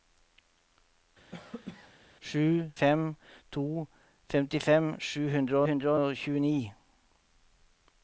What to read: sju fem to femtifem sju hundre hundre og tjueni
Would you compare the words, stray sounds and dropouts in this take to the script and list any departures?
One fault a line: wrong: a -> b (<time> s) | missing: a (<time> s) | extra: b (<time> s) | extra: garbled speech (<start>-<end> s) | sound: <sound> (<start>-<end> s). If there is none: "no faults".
sound: cough (1.3-1.9 s)